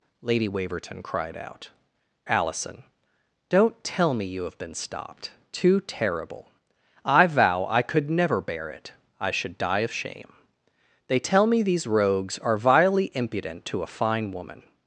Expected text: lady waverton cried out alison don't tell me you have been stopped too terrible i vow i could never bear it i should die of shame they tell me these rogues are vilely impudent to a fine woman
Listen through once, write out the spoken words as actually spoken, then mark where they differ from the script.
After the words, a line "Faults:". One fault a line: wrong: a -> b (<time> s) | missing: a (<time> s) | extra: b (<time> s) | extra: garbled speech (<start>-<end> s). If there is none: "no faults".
lady waverton cried out alison don't tell me you have been stopped too terrible i vow i could never bear it i should die of shame they tell me these rogues are vilely impudent to a fine woman
Faults:
no faults